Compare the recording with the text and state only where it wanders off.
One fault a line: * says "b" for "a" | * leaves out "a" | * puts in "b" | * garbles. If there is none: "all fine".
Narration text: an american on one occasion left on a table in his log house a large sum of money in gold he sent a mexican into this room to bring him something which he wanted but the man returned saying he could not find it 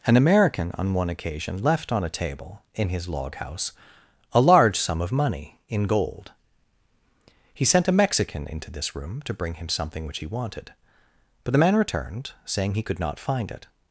all fine